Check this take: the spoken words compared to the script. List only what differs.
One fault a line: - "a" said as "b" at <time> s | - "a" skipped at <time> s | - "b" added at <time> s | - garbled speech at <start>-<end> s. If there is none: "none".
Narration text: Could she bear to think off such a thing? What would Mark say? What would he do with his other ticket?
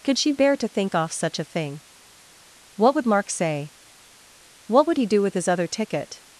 none